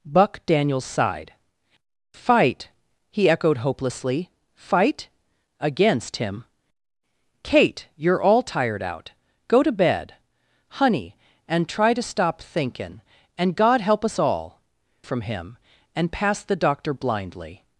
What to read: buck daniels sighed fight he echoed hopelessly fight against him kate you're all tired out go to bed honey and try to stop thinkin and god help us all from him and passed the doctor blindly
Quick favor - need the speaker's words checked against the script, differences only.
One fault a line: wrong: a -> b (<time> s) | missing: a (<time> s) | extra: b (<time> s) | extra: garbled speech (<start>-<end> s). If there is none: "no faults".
no faults